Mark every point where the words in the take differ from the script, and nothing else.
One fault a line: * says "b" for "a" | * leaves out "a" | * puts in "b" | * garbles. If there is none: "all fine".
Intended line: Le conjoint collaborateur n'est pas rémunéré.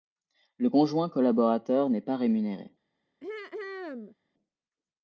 all fine